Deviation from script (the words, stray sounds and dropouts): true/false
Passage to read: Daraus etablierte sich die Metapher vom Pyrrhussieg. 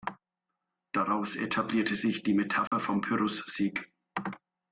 true